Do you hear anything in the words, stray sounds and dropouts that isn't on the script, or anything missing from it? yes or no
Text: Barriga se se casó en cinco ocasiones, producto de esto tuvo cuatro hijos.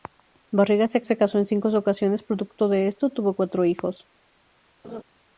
yes